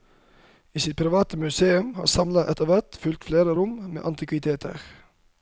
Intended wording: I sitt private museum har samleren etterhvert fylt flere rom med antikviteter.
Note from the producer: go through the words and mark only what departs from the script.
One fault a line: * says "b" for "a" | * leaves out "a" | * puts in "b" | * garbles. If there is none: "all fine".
all fine